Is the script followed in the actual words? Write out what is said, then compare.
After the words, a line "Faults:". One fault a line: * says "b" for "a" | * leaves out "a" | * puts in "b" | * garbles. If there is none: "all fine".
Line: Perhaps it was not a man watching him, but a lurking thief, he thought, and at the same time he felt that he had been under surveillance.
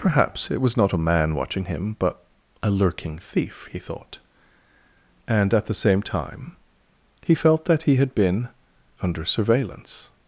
Perhaps it was not a man watching him, but a lurking thief, he thought, and at the same time he felt that he had been under surveillance.
Faults:
all fine